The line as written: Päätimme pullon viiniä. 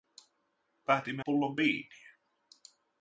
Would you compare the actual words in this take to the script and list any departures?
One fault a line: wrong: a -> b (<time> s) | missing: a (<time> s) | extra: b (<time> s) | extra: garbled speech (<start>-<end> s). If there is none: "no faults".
no faults